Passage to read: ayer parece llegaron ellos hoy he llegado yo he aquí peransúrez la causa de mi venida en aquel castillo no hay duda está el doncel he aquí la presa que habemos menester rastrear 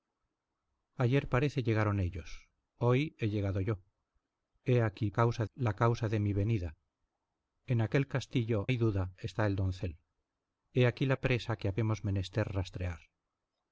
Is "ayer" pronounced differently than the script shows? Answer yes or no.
no